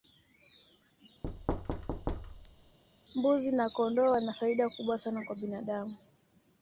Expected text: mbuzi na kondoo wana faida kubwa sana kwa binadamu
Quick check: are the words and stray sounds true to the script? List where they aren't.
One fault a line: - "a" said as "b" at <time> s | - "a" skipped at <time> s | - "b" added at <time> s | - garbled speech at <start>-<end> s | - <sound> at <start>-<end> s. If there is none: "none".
- thud at 1.2-2.8 s